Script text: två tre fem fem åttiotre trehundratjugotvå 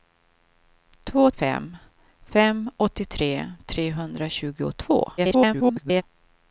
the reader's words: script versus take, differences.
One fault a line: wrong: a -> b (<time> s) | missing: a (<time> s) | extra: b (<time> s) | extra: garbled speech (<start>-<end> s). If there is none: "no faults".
missing: tre (1.3 s)
extra: garbled speech (5.2-6.0 s)